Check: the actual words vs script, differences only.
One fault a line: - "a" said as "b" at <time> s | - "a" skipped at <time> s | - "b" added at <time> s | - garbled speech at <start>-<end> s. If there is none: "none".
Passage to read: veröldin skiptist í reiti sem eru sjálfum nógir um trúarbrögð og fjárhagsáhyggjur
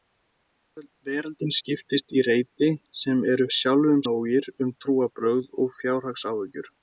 none